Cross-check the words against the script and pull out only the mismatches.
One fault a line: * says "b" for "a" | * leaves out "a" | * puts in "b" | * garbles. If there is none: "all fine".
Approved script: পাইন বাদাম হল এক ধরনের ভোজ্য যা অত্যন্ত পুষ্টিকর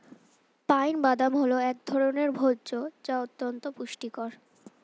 all fine